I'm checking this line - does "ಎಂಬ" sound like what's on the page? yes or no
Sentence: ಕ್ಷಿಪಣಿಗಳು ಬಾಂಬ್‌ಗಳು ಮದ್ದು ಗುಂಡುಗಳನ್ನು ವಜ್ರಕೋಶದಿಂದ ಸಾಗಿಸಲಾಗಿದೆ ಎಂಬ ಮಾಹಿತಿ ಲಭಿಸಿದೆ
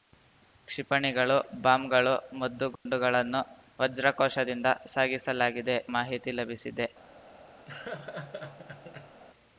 no